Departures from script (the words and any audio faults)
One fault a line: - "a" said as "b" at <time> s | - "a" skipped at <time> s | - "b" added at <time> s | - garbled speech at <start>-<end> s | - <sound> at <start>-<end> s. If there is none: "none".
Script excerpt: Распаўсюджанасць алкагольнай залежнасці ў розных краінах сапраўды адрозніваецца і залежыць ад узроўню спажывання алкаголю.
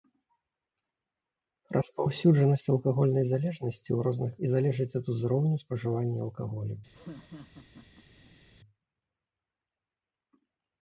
- "краінах сапраўды адрозніваецца" skipped at 4.3 s
- laugh at 6.9-8.4 s